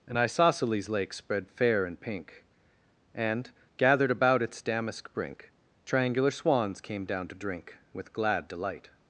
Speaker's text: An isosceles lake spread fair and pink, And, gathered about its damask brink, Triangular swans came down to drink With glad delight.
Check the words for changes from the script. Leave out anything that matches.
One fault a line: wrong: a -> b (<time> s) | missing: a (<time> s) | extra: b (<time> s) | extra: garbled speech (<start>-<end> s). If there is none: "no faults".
no faults